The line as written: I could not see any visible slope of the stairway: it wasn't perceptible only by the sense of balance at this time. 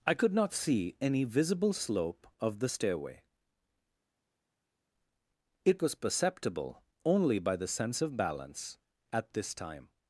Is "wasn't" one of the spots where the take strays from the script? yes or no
yes